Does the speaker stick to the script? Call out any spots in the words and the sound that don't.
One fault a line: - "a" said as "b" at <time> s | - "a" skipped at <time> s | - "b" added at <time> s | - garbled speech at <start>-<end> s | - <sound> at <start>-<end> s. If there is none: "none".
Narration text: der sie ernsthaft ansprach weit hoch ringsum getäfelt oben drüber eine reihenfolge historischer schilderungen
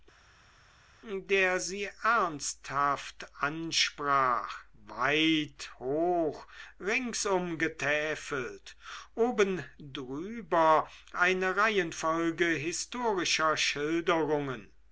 none